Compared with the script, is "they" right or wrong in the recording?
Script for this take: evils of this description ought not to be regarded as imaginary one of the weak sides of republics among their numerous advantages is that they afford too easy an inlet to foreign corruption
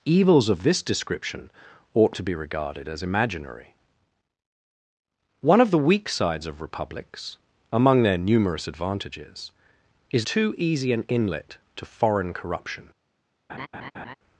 wrong